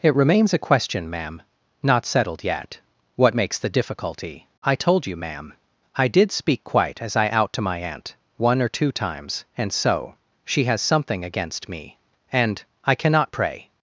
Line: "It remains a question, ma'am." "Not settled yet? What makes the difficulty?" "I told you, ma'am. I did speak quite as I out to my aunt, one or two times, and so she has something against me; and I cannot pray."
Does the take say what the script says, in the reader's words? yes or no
yes